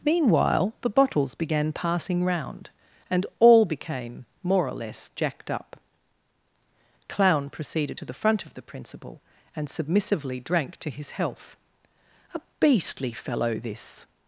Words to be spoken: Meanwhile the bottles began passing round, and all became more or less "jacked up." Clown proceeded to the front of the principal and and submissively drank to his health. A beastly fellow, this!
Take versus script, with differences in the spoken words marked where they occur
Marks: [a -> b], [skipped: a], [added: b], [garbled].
Meanwhile the bottles began passing round, and all became more or less "jacked up." Clown proceeded to the front of the principal and [skipped: and] submissively drank to his health. A beastly fellow, this!